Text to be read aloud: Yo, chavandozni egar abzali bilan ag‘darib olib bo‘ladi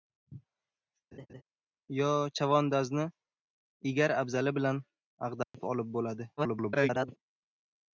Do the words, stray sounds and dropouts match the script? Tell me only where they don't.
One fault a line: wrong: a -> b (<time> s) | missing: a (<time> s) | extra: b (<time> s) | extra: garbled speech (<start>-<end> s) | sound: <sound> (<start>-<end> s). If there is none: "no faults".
sound: laugh (1.1-1.4 s)
sound: dropout (5.4-5.5 s)
extra: garbled speech (6.4-7.2 s)